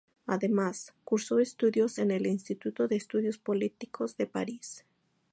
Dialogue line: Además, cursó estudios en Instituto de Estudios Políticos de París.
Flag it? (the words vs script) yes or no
yes